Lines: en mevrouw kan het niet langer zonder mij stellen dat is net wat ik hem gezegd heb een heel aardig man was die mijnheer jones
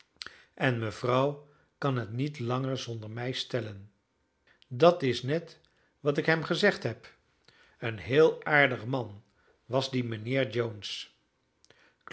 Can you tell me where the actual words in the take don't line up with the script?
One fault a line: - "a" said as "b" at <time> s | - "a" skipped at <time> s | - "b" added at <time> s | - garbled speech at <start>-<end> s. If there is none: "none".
none